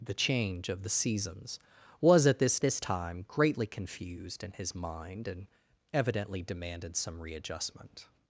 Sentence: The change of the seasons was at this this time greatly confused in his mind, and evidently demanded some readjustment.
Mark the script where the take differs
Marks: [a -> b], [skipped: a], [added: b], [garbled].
The change of the seasons was at this this time greatly confused in his mind, and evidently demanded some readjustment.